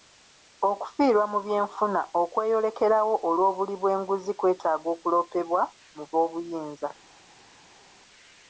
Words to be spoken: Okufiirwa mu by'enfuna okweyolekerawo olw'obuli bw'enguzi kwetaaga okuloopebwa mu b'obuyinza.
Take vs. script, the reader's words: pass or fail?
pass